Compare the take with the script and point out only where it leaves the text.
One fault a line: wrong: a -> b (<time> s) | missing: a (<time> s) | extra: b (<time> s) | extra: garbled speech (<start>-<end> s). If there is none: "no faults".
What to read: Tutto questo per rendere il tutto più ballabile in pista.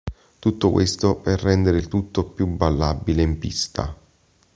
no faults